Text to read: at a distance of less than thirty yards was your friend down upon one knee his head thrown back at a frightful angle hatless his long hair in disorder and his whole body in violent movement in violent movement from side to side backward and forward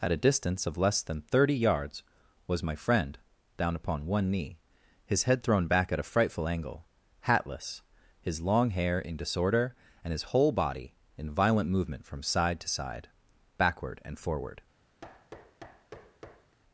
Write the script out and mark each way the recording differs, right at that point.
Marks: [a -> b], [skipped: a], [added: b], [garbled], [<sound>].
at a distance of less than thirty yards was [your -> my] friend down upon one knee his head thrown back at a frightful angle hatless his long hair in disorder and his whole body in violent movement [skipped: in violent movement] from side to side backward and forward [thud]